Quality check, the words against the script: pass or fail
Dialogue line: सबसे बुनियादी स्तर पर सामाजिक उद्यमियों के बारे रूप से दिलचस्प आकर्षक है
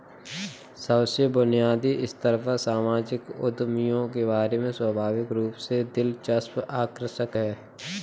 fail